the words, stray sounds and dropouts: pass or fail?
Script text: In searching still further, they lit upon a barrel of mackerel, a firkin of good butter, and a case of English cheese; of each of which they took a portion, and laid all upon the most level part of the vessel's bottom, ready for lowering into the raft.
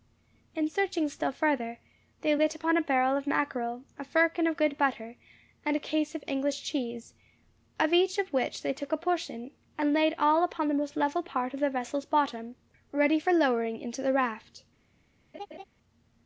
fail